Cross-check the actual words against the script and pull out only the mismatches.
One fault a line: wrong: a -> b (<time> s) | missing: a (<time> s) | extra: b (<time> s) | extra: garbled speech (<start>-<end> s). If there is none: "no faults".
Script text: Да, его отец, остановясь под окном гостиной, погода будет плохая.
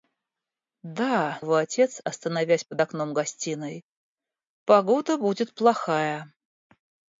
no faults